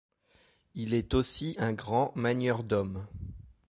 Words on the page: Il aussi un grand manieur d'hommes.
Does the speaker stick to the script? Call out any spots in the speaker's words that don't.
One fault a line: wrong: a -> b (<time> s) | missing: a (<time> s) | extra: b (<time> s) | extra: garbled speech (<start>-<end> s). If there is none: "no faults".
extra: est (0.9 s)